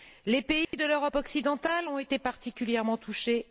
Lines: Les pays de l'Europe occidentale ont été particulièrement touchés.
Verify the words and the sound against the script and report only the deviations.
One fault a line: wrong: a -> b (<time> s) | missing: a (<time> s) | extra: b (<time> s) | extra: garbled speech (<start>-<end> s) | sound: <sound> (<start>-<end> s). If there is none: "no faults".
sound: dropout (0.6-0.7 s)